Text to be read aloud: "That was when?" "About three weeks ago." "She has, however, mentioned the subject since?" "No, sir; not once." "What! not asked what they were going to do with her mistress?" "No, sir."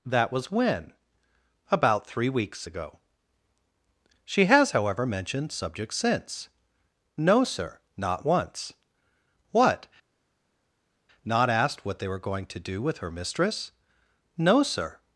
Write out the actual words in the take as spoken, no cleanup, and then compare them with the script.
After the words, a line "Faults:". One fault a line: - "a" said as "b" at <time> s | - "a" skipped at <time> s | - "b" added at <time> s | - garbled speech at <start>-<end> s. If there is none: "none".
"That was when?" "About three weeks ago." "She has, however, mentioned subject since?" "No, sir; not once." "What! not asked what they were going to do with her mistress?" "No, sir."
Faults:
- "the" skipped at 5.5 s